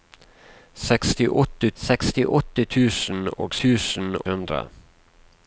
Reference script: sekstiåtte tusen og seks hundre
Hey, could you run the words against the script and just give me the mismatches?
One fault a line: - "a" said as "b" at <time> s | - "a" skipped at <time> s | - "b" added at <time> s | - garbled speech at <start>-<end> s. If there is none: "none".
- "sekstiåtte" added at 1.8 s
- "seks" said as "tusen" at 3.6 s